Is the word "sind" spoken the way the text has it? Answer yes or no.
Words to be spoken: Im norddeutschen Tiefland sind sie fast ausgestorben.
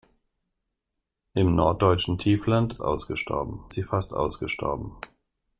no